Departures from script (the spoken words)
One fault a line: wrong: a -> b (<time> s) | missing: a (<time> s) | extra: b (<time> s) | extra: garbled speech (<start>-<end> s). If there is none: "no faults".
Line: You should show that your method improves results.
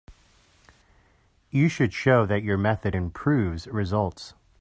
no faults